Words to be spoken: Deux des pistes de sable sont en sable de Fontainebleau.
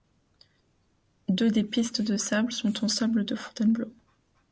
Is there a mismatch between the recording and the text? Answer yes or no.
no